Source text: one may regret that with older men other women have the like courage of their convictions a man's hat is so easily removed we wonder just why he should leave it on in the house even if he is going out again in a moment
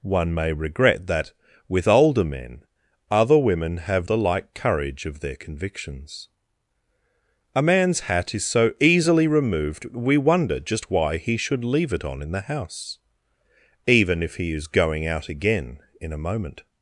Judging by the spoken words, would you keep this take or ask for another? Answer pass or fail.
pass